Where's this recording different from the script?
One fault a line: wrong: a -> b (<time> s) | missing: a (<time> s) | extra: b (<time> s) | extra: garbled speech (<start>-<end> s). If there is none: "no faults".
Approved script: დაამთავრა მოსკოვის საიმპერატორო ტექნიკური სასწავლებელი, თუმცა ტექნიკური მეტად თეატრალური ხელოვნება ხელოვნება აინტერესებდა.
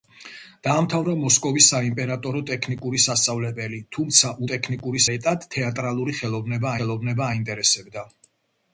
no faults